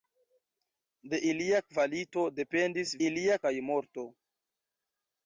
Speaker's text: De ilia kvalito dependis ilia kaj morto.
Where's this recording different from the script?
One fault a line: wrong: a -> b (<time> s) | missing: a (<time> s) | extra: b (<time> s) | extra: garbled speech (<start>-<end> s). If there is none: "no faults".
no faults